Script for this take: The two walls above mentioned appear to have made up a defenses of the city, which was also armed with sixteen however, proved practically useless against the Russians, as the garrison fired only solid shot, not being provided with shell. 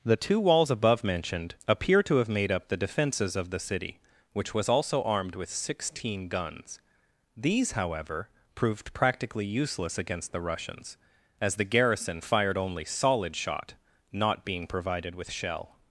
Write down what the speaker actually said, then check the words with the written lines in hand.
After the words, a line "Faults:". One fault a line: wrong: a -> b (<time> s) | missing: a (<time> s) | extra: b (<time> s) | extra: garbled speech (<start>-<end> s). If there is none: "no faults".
The two walls above mentioned appear to have made up the defenses of the city, which was also armed with sixteen guns. These, however, proved practically useless against the Russians, as the garrison fired only solid shot, not being provided with shell.
Faults:
wrong: a -> the (2.7 s)
extra: guns These (6.3 s)